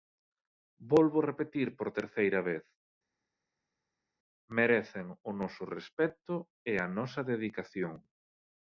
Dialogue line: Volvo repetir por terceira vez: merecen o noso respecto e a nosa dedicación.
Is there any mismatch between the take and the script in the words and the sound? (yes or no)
no